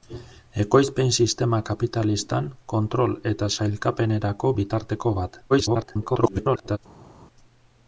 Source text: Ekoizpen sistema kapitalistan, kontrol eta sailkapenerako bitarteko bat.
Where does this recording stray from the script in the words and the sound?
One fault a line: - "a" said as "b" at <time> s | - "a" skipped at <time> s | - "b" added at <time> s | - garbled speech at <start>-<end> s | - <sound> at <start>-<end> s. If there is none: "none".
- garbled speech at 5.5-6.8 s